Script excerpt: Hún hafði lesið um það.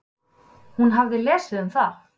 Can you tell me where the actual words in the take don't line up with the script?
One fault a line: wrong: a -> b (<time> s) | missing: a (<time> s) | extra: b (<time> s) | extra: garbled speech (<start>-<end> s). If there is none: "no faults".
no faults